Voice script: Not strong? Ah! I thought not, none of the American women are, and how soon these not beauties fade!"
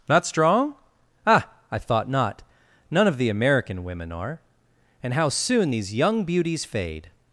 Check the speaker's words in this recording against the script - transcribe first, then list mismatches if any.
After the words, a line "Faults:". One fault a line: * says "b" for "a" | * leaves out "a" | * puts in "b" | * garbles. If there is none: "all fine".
Not strong? Ah! I thought not, none of the American women are, and how soon these young beauties fade!"
Faults:
* says "young" for "not"